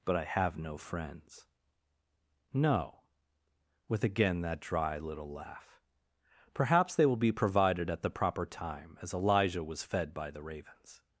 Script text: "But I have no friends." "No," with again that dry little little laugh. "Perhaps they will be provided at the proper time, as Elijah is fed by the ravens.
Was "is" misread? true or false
true